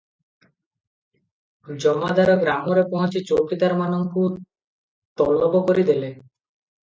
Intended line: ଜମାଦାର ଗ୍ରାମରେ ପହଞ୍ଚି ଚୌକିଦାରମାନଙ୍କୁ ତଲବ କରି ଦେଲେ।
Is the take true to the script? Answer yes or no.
yes